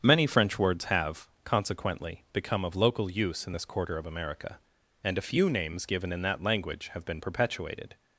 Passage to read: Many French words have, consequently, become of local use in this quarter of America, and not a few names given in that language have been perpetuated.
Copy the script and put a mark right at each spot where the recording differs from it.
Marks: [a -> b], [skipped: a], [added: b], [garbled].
Many French words have, consequently, become of local use in this quarter of America, and [skipped: not] a few names given in that language have been perpetuated.